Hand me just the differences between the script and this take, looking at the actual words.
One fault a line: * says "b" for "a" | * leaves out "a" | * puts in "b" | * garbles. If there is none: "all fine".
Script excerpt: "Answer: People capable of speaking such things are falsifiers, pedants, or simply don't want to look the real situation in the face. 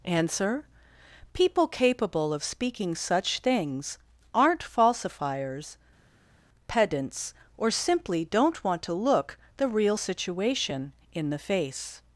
* says "aren't" for "are"